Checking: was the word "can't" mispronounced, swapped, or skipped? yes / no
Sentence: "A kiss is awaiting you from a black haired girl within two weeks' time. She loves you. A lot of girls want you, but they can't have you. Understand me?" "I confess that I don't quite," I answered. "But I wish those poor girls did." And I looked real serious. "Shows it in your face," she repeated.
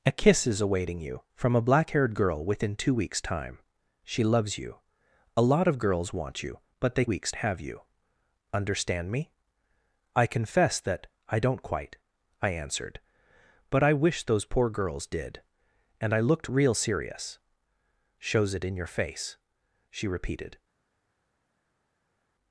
yes